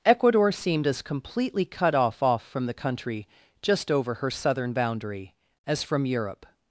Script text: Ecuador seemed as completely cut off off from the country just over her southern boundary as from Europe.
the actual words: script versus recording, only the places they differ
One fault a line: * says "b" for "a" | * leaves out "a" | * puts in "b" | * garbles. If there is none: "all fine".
all fine